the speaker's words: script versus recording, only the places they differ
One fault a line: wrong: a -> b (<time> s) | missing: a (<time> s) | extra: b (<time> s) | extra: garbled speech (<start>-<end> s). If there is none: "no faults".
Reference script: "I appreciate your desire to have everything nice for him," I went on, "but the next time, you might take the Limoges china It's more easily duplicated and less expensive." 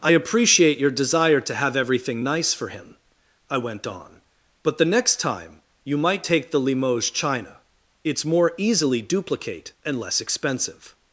wrong: duplicated -> duplicate (9.0 s)